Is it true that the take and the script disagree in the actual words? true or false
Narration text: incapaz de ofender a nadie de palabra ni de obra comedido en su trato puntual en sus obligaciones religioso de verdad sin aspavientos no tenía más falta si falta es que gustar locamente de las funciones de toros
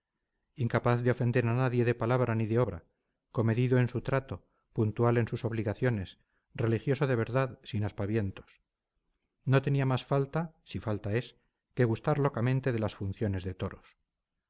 false